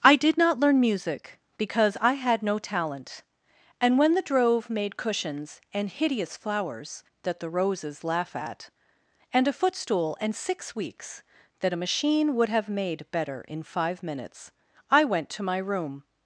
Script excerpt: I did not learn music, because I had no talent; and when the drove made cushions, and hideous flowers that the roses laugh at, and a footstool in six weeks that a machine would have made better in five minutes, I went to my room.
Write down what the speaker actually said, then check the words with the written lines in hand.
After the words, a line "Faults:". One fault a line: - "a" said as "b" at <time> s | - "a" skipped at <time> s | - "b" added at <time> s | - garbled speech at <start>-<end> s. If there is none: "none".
I did not learn music, because I had no talent; and when the drove made cushions, and hideous flowers that the roses laugh at, and a footstool and six weeks that a machine would have made better in five minutes, I went to my room.
Faults:
- "in" said as "and" at 10.2 s